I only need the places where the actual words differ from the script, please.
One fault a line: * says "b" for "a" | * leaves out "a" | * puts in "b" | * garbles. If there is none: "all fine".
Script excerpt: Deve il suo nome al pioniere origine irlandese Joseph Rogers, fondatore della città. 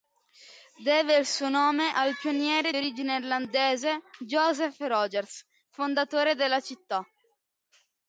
all fine